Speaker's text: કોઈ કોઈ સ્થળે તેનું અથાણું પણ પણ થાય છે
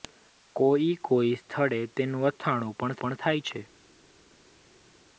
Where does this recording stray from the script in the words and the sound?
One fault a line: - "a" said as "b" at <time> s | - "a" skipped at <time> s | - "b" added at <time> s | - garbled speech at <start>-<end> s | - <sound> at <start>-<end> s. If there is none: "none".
none